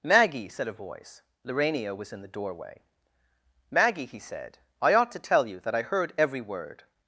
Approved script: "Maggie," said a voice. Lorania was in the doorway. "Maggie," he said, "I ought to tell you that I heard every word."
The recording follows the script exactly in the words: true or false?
true